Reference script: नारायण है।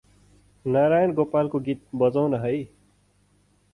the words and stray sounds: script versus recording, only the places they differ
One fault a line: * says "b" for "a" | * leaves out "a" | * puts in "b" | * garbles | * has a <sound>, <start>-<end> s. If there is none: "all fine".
* puts in "गोपालको गीत बजाउन"